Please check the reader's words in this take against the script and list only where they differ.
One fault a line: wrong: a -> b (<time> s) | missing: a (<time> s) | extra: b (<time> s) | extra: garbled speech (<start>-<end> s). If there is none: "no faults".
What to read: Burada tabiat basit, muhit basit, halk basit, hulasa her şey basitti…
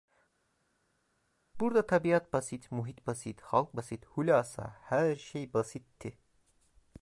no faults